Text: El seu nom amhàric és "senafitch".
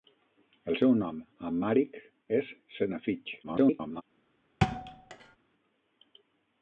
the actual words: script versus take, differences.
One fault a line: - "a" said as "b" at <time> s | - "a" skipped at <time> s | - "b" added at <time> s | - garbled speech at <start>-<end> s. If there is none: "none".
- garbled speech at 3.4-4.0 s